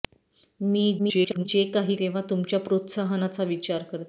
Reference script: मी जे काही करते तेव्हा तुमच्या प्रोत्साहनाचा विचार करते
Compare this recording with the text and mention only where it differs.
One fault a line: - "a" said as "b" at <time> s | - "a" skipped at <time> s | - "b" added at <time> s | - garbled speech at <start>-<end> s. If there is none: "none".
- garbled speech at 1.0-1.5 s
- "करते" skipped at 1.9 s